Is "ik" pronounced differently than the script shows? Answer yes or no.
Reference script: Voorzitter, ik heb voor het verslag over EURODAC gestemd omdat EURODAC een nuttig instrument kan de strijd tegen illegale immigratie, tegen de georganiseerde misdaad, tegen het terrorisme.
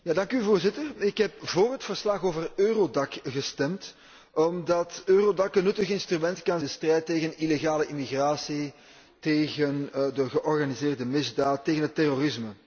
no